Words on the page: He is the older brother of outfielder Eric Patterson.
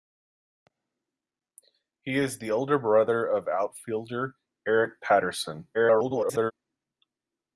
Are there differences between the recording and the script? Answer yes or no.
yes